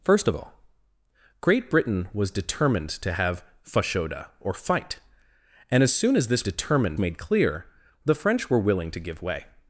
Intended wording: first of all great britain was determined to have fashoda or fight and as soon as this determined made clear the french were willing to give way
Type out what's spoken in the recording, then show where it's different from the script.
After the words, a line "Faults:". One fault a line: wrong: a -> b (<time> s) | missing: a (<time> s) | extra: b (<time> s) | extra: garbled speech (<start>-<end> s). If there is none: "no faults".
first of all great britain was determined to have fashoda or fight and as soon as this determined made clear the french were willing to give way
Faults:
no faults